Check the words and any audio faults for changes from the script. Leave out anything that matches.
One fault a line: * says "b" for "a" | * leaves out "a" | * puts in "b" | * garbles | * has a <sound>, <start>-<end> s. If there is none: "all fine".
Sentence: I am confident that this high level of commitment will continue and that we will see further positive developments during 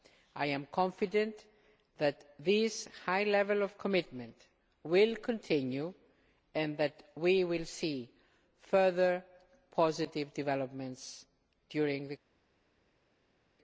all fine